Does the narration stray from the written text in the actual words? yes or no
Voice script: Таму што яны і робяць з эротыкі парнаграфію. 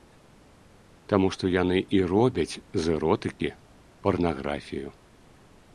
no